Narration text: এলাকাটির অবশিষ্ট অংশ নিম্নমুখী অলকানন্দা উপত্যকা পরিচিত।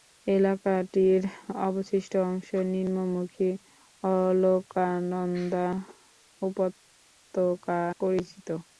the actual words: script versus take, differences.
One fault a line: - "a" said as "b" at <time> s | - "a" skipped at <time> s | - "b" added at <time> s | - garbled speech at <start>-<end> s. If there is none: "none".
none